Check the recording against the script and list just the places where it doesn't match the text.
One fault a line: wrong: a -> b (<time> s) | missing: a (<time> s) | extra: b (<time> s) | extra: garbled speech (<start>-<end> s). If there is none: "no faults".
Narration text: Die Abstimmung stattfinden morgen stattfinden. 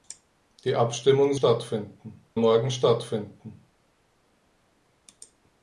no faults